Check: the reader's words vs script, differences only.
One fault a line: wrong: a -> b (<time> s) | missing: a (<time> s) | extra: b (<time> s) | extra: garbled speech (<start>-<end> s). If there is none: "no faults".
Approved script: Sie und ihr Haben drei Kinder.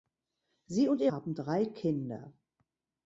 no faults